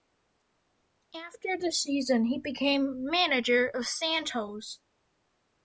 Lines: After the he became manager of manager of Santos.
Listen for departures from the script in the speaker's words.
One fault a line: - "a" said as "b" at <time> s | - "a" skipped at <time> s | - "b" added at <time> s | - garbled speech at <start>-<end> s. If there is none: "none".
- "season" added at 1.7 s
- "manager of" skipped at 3.9 s